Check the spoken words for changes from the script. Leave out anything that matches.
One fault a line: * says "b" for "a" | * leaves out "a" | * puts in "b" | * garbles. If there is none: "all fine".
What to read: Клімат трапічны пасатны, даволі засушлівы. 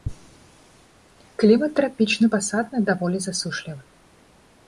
all fine